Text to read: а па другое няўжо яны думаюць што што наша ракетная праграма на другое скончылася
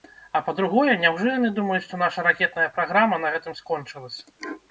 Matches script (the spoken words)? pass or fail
fail